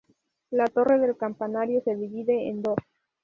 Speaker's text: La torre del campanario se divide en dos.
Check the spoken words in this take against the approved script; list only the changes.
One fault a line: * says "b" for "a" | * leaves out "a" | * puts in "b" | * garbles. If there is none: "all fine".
all fine